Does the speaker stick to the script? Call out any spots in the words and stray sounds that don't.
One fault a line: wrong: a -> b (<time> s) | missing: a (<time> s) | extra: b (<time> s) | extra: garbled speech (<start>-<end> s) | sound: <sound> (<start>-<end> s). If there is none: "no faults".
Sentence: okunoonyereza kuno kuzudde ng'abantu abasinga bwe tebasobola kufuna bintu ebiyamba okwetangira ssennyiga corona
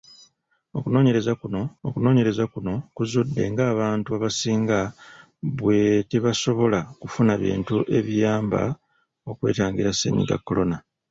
extra: okunoonyereza kuno (1.9 s)